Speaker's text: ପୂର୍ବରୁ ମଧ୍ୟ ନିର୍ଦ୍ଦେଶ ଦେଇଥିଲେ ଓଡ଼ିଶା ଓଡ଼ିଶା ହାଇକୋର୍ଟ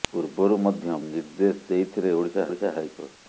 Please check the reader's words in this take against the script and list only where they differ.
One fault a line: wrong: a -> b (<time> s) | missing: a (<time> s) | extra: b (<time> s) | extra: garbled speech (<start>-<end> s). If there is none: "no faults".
no faults